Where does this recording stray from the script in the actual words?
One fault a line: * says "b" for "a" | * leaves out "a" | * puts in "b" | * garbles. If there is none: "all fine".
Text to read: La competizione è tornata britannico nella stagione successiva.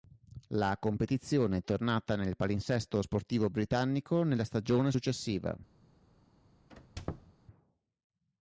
* puts in "nel palinsesto sportivo"